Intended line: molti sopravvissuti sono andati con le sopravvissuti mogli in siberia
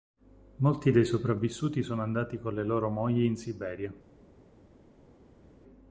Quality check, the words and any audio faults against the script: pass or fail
fail